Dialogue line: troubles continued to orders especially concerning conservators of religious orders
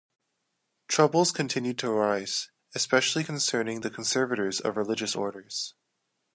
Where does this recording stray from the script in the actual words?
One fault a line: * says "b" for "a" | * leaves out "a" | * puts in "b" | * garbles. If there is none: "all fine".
* says "arise" for "orders"
* puts in "the"